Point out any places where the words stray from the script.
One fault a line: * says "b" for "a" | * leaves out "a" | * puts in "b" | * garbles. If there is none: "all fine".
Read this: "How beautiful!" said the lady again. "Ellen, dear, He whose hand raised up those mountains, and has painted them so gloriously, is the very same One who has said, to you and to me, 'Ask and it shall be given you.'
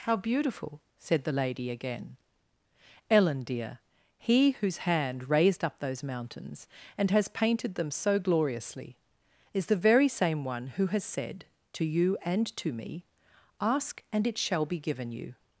all fine